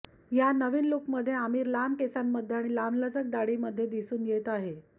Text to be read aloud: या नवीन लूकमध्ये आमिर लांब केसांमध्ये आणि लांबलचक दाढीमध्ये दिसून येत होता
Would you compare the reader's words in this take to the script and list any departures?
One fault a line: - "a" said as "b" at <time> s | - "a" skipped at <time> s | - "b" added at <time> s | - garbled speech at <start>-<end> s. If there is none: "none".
- "होता" said as "आहे" at 4.5 s